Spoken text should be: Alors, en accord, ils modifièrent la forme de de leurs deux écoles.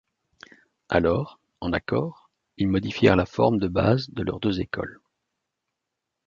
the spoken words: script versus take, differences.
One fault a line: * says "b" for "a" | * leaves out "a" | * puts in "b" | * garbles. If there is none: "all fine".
* puts in "base"